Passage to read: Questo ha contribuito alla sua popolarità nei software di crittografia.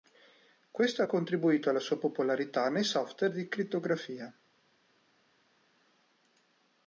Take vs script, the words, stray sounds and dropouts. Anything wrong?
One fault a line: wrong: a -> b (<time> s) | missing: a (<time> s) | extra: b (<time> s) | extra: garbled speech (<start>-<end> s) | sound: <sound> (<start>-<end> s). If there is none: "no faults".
no faults